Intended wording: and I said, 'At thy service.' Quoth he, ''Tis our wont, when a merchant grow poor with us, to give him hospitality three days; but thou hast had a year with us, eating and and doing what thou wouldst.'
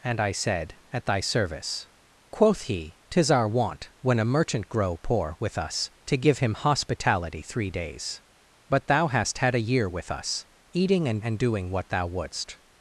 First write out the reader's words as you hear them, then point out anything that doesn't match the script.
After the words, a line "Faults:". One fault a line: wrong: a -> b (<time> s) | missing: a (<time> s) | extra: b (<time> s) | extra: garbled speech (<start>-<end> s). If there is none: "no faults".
and I said, 'At thy service.' Quoth he, ''Tis our wont, when a merchant grow poor with us, to give him hospitality three days; but thou hast had a year with us, eating and and doing what thou wouldst.'
Faults:
no faults